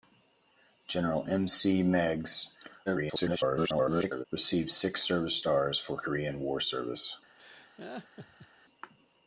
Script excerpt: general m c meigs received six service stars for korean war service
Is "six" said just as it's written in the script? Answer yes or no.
yes